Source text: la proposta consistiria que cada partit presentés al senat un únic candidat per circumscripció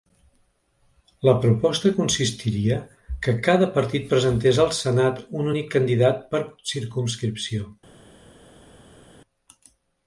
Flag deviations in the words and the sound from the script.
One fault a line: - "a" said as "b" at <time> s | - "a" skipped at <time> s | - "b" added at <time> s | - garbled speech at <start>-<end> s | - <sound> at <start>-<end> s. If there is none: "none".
none